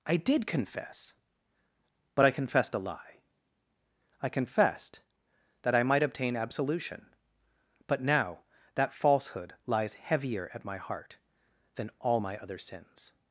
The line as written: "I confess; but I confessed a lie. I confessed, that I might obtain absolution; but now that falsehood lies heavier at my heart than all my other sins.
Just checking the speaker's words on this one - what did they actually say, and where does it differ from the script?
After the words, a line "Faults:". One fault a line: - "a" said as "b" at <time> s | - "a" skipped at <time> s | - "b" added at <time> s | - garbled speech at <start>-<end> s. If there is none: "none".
"I did confess; but I confessed a lie. I confessed, that I might obtain absolution; but now that falsehood lies heavier at my heart than all my other sins.
Faults:
- "did" added at 0.2 s